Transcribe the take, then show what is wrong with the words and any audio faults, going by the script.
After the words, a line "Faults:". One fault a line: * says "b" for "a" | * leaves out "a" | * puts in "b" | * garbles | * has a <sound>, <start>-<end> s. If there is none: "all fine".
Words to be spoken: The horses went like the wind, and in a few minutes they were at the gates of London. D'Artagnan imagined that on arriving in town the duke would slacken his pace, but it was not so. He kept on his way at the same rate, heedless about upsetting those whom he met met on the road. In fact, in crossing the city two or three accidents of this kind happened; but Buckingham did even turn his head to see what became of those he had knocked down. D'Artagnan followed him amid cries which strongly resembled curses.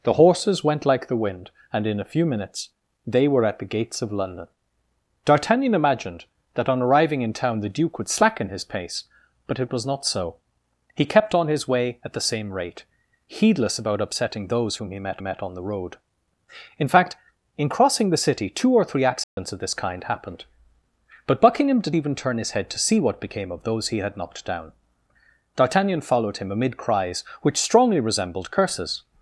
The horses went like the wind, and in a few minutes they were at the gates of London. D'Artagnan imagined that on arriving in town the duke would slacken his pace, but it was not so. He kept on his way at the same rate, heedless about upsetting those whom he met met on the road. In fact, in crossing the city two or three accidents of this kind happened; but Buckingham did even turn his head to see what became of those he had knocked down. D'Artagnan followed him amid cries which strongly resembled curses.
Faults:
* has a dropout, 19.2-19.4 s